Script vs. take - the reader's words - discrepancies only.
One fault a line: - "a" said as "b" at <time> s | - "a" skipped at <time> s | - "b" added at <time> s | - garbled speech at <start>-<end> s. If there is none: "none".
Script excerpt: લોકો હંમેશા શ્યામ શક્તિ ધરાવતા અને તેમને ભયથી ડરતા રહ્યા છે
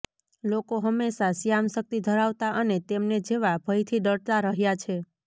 - "જેવા" added at 3.3 s